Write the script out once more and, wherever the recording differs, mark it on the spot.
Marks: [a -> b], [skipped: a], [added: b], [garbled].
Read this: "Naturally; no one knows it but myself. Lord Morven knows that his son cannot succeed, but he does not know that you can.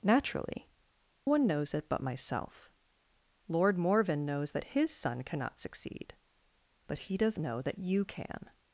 "Naturally; [skipped: no] one knows it but myself. Lord Morven knows that his son cannot succeed, but he does [skipped: not] know that you can.